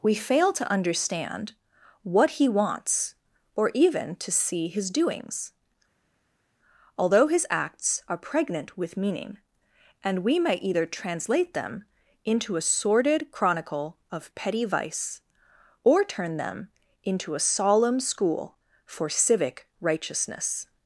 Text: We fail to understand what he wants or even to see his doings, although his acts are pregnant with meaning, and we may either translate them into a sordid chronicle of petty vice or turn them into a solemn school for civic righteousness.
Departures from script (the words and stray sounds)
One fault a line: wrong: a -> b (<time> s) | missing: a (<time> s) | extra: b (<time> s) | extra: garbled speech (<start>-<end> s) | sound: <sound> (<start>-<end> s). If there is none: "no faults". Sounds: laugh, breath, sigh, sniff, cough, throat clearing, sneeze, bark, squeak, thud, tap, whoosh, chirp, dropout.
no faults